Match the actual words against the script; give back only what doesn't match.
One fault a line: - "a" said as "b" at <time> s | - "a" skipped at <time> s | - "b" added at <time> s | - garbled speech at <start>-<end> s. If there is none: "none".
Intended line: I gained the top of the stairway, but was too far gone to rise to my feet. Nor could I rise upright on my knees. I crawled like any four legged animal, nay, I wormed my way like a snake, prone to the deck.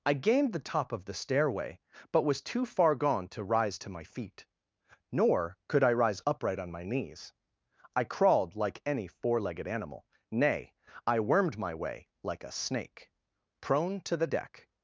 none